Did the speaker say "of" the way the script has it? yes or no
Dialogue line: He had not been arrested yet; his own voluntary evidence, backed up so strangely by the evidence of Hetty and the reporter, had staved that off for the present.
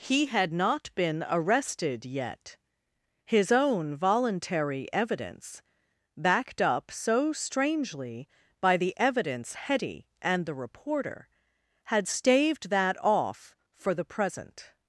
no